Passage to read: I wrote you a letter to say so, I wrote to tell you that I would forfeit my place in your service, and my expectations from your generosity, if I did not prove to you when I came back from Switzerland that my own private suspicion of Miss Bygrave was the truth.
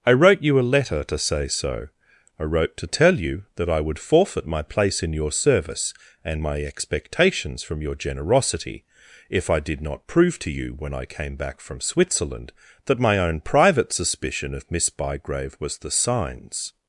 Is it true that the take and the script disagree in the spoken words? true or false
true